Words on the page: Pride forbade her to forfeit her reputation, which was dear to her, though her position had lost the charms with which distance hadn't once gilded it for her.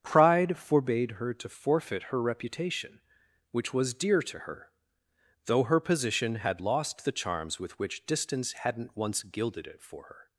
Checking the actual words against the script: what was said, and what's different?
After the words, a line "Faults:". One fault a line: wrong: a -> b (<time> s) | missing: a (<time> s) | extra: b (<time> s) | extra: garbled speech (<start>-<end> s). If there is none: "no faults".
Pride forbade her to forfeit her reputation, which was dear to her, though her position had lost the charms with which distance hadn't once gilded it for her.
Faults:
no faults